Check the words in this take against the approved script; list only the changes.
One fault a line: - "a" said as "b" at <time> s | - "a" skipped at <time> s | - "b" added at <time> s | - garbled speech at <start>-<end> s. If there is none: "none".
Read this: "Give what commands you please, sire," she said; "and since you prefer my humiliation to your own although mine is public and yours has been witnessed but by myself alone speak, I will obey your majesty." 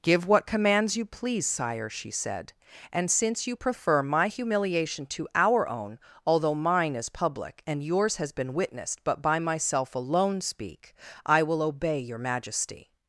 - "your" said as "our" at 5.3 s